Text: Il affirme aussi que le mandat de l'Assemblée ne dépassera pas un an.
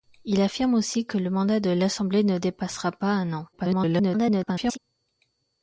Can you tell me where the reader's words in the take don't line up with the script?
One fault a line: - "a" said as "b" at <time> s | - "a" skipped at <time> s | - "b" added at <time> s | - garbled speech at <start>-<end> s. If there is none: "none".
- garbled speech at 3.5-4.8 s